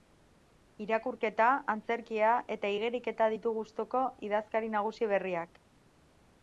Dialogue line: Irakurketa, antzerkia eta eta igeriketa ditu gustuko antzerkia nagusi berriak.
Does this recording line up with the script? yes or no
no